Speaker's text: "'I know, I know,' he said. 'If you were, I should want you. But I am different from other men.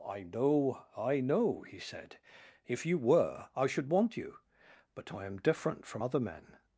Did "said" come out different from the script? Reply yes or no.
no